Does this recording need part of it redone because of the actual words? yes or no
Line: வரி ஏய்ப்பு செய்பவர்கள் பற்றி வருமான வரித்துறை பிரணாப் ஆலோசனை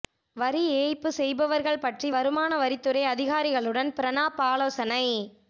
yes